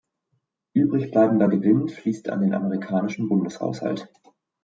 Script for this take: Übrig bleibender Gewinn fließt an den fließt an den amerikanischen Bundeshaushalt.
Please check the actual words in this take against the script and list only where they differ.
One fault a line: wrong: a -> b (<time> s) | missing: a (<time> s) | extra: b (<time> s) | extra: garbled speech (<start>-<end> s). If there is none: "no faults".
missing: fließt an den (2.5 s)